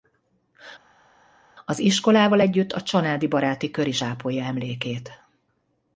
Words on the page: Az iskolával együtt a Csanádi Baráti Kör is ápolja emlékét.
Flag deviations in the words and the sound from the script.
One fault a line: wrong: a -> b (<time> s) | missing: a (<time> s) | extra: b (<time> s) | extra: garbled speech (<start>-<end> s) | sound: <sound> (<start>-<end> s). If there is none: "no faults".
no faults